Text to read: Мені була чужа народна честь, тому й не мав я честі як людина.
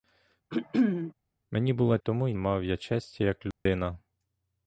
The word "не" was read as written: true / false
false